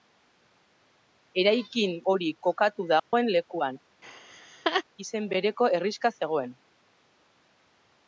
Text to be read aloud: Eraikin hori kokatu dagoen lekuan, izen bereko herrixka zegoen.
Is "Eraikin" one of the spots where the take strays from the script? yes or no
no